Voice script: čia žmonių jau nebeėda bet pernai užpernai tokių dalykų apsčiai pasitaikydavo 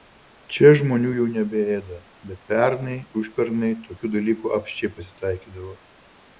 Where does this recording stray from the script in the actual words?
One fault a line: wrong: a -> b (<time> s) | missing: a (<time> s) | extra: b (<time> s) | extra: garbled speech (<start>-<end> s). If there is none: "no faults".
no faults